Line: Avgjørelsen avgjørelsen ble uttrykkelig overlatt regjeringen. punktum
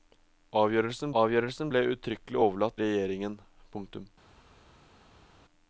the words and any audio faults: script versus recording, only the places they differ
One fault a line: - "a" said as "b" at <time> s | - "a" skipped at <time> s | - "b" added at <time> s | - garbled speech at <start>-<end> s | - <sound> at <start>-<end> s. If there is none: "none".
none